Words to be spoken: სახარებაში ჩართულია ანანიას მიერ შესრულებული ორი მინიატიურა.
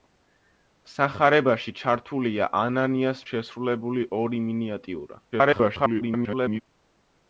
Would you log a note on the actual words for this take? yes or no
yes